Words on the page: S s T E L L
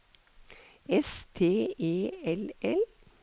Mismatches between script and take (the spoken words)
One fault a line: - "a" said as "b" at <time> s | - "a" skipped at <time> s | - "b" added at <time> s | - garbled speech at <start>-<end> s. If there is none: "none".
- "s" skipped at 1.3 s